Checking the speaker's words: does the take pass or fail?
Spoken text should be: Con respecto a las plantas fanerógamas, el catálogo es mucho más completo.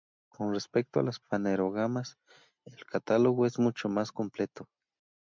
fail